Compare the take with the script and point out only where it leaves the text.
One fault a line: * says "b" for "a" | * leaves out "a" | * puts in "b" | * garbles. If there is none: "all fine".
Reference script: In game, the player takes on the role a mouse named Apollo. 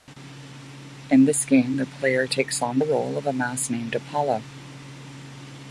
* puts in "this"
* puts in "of"